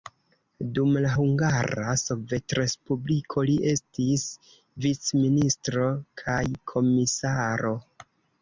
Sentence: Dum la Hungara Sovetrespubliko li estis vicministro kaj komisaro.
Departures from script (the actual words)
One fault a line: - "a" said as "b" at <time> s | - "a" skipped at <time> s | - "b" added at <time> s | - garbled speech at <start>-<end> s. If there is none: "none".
none